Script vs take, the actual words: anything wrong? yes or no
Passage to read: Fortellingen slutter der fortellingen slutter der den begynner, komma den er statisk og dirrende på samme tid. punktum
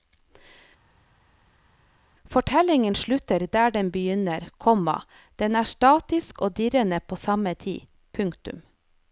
yes